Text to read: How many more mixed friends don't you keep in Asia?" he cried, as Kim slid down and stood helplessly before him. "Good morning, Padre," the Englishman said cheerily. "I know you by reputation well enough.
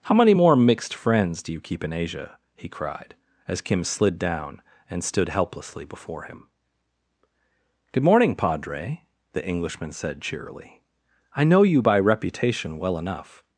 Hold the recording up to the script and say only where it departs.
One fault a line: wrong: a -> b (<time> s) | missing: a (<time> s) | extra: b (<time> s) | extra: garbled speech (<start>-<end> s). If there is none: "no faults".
wrong: don't -> do (1.4 s)